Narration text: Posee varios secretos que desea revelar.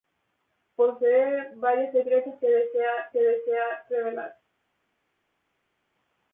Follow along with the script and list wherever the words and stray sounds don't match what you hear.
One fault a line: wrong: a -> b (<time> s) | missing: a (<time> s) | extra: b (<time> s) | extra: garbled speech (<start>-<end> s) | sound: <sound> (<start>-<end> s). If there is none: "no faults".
extra: que desea (3.1 s)